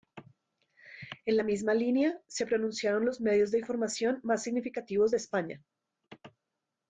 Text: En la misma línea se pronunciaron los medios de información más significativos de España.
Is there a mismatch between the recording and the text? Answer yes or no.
no